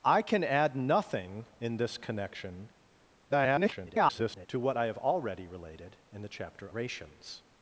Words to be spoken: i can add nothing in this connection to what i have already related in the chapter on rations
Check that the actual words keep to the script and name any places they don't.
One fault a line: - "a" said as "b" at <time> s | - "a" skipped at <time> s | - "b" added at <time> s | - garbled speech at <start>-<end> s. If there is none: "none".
- garbled speech at 3.3-4.5 s
- "on" skipped at 6.7 s